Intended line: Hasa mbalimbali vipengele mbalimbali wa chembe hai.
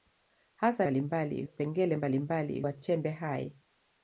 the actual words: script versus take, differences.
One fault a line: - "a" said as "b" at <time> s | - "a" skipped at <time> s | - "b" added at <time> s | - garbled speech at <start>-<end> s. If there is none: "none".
none